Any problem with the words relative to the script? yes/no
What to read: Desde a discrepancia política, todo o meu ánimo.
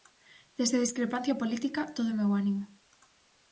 no